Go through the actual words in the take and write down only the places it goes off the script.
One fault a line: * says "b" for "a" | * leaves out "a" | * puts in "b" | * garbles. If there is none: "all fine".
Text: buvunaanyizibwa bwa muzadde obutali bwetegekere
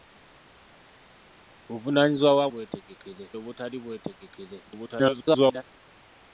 * says "bwetegekere" for "muzadde"
* garbles